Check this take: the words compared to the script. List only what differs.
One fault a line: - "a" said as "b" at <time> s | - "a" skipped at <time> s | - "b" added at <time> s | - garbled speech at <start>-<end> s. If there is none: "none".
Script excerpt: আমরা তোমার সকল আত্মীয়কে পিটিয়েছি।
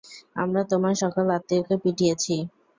none